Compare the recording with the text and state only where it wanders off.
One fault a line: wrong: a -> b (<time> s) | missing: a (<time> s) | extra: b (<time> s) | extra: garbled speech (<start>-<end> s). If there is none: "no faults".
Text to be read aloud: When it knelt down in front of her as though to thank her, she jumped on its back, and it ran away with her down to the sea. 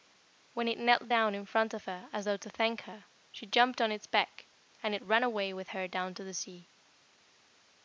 no faults